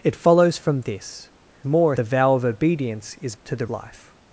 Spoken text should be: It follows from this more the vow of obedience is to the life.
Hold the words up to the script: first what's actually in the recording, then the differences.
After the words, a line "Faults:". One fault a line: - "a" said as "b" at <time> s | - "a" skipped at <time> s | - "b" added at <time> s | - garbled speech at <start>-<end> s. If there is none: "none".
It follows from this more the vow of obedience is to the life.
Faults:
none